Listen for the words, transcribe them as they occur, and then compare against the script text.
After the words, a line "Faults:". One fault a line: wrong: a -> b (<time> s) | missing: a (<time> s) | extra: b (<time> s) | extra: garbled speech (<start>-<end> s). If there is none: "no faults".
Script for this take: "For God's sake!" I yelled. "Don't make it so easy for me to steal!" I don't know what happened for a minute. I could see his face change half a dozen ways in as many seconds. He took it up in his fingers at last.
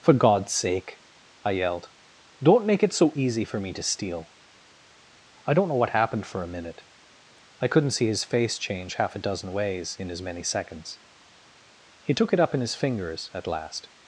"For God's sake!" I yelled. "Don't make it so easy for me to steal!" I don't know what happened for a minute. I couldn't see his face change half a dozen ways in as many seconds. He took it up in his fingers at last.
Faults:
wrong: could -> couldn't (7.7 s)